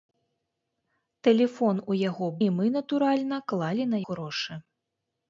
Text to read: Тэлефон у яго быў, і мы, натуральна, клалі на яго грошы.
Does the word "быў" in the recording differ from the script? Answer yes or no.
yes